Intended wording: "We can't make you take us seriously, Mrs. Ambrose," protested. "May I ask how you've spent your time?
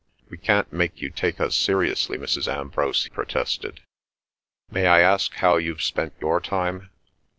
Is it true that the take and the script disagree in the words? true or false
false